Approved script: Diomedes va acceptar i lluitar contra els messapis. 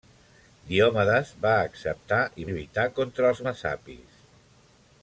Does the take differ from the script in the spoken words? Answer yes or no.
no